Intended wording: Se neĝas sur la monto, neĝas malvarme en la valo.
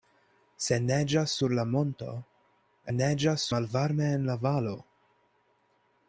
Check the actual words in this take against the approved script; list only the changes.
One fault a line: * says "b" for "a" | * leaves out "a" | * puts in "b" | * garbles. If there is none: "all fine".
all fine